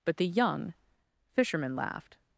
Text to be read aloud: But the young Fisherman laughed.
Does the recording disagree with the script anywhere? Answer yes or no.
no